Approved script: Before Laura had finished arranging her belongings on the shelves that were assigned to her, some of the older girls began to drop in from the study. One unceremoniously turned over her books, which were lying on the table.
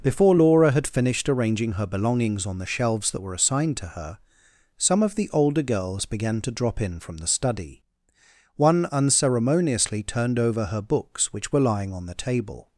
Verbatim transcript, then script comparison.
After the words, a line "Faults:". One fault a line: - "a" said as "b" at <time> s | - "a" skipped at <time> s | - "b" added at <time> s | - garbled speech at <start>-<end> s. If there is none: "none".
Before Laura had finished arranging her belongings on the shelves that were assigned to her, some of the older girls began to drop in from the study. One unceremoniously turned over her books, which were lying on the table.
Faults:
none